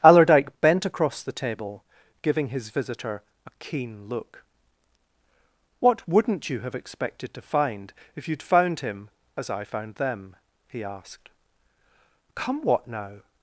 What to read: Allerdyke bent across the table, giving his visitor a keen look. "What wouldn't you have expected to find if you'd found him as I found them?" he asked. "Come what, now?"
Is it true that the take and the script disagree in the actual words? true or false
false